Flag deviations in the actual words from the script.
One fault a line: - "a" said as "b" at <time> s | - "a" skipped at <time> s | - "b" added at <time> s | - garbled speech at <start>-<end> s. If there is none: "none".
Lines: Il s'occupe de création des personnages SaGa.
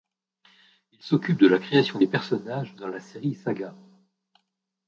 - "la" added at 1.5 s
- "dans la série" added at 2.7 s